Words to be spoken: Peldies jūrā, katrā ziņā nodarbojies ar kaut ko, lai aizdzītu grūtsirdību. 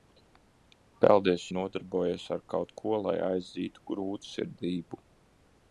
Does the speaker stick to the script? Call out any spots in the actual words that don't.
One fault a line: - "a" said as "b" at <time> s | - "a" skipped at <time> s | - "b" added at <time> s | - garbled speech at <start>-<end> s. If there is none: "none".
- "jūrā katrā ziņā" skipped at 1.4 s